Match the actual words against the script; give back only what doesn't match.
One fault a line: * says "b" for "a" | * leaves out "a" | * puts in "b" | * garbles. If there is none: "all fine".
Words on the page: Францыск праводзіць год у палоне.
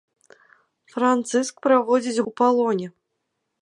* leaves out "год"